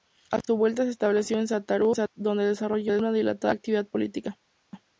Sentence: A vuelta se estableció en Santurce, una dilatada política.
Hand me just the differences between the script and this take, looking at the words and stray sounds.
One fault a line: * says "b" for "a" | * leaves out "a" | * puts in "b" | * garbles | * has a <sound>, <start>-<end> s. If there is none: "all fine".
* puts in "su"
* puts in "donde desarrolló"
* puts in "actividad"